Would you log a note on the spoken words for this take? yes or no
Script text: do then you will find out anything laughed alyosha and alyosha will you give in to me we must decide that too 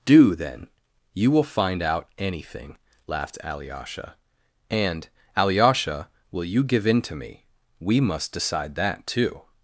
no